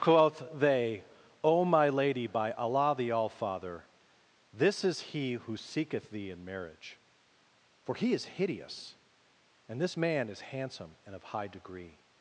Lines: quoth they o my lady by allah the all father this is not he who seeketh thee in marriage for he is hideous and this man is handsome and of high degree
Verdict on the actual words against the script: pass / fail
fail